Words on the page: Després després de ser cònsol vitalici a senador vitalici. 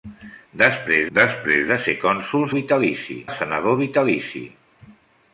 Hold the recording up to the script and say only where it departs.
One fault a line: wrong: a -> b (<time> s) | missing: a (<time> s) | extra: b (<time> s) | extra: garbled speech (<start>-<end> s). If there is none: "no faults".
no faults